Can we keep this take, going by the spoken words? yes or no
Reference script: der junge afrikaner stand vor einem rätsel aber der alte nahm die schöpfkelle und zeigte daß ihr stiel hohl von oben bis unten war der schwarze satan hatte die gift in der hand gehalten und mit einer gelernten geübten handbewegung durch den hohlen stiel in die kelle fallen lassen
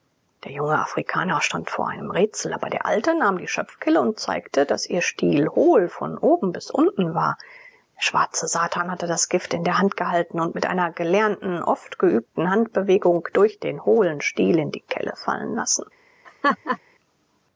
no